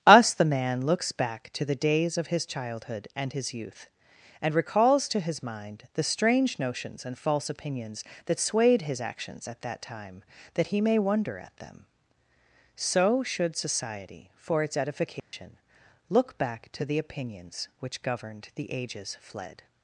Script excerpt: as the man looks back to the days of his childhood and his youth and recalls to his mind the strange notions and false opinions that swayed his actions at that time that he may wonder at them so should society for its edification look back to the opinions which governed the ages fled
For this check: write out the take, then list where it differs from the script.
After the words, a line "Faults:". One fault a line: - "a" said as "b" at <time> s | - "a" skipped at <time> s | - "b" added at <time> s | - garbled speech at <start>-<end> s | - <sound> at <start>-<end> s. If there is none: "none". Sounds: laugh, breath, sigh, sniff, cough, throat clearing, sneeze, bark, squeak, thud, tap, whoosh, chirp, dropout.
us the man looks back to the days of his childhood and his youth and recalls to his mind the strange notions and false opinions that swayed his actions at that time that he may wonder at them so should society for its edification look back to the opinions which governed the ages fled
Faults:
- "as" said as "us" at 0.1 s
- dropout at 15.2-15.3 s